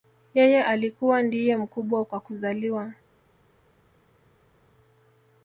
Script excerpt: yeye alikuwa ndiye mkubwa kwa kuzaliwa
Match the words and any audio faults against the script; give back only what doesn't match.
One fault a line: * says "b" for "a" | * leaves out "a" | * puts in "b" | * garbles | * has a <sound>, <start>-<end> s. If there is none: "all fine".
all fine